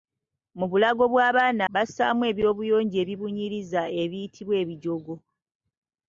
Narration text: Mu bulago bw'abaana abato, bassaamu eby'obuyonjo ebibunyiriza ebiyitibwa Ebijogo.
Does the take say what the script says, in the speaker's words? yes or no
no